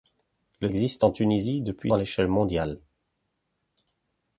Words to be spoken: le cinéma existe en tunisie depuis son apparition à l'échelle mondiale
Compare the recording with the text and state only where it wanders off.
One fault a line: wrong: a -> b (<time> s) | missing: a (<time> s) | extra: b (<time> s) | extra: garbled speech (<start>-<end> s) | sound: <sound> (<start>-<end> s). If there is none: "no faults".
missing: cinéma (0.7 s)
missing: son apparition (1.9 s)